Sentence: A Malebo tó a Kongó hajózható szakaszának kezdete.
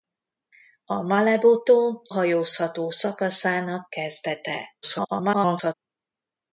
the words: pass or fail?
fail